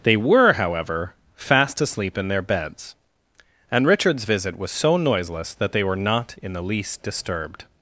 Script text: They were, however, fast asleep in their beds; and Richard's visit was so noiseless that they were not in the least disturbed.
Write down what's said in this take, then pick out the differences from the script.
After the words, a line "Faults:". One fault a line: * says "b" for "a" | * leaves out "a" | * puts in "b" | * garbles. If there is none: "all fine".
They were, however, fast asleep in their beds; and Richard's visit was so noiseless that they were not in the least disturbed.
Faults:
all fine